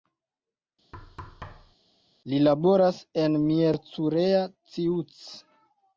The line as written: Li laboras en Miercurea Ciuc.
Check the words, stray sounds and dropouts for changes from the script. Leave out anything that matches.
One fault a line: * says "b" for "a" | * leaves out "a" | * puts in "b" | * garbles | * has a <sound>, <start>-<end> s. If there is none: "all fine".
* has a thud, 0.9-1.8 s